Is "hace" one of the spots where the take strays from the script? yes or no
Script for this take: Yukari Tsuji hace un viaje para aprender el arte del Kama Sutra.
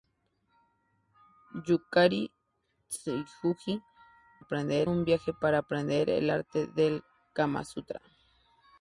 yes